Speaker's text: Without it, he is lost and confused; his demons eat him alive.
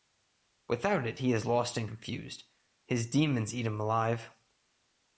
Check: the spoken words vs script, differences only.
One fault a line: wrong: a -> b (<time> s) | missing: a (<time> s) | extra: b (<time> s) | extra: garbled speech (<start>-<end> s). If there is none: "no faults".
no faults